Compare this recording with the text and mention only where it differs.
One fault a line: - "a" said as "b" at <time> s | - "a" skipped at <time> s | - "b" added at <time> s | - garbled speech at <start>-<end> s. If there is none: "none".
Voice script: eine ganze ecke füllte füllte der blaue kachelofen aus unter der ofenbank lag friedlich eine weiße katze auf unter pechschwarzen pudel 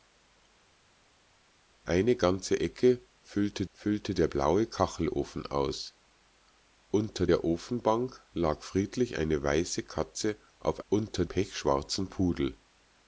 none